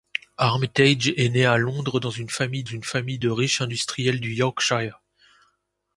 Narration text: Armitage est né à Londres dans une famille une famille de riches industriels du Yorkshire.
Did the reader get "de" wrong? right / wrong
right